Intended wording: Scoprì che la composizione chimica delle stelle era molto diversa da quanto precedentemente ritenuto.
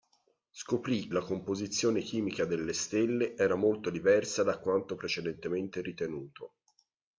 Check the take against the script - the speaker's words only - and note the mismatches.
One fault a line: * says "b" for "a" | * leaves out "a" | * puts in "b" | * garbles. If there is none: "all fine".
* leaves out "che"